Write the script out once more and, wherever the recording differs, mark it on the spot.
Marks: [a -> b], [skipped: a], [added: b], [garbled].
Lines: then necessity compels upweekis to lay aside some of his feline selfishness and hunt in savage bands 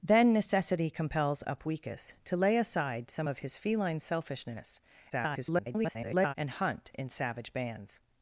then necessity compels upweekis to lay aside some of his feline selfishness [garbled] and hunt in savage bands